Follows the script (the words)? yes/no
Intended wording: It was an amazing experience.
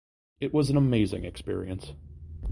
yes